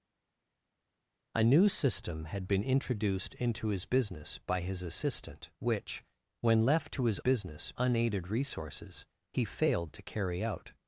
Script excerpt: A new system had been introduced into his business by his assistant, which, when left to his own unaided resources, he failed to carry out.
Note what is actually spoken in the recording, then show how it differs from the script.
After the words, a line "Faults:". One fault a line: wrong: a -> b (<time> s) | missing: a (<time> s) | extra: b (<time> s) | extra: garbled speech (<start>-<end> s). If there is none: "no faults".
A new system had been introduced into his business by his assistant, which, when left to his business unaided resources, he failed to carry out.
Faults:
wrong: own -> business (7.2 s)